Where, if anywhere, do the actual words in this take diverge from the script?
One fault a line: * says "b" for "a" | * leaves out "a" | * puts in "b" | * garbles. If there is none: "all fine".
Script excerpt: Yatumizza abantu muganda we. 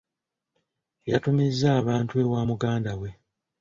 * puts in "ewa"